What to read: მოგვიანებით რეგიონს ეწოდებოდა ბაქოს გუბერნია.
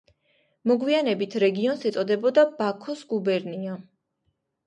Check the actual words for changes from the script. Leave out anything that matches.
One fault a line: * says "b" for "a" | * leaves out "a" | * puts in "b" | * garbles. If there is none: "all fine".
all fine